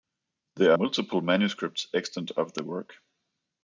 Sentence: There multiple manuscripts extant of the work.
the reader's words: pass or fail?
pass